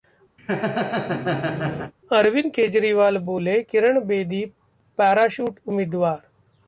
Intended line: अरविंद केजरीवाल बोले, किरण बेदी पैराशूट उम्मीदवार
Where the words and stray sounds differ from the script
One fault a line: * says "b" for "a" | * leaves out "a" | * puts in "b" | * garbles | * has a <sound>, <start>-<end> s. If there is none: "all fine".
* has a laugh, 0.4-1.9 s